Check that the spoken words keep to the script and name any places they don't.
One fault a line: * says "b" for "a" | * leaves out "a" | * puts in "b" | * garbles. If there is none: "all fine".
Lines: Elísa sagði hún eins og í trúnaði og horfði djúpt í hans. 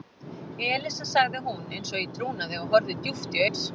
all fine